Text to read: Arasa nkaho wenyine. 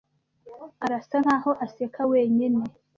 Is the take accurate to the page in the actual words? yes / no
no